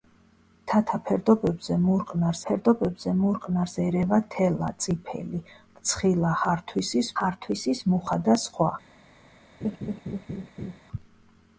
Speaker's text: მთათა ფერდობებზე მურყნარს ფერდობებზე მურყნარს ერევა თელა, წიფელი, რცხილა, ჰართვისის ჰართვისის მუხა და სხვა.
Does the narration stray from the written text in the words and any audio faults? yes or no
yes